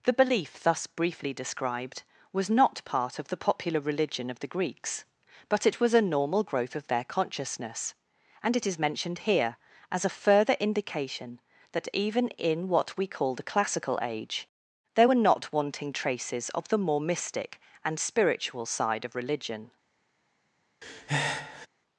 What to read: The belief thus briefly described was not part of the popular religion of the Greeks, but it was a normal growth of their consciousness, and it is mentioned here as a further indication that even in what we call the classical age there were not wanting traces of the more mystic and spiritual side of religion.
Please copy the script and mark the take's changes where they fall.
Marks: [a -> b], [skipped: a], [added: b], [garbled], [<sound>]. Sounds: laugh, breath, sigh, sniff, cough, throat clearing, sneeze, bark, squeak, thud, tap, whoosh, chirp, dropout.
The belief thus briefly described was not part of the popular religion of the Greeks, but it was a normal growth of their consciousness, and it is mentioned here as a further indication that even in what we call the classical age there were not wanting traces of the more mystic and spiritual side of religion. [breath]